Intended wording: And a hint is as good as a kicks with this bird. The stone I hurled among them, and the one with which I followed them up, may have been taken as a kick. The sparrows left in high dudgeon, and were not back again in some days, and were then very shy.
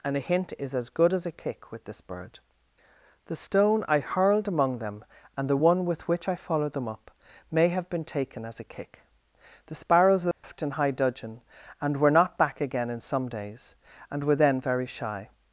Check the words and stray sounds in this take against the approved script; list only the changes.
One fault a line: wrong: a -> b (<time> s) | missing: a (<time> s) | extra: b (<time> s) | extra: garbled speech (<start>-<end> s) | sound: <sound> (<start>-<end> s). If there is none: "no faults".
wrong: kicks -> kick (1.3 s)
sound: dropout (10.3-10.4 s)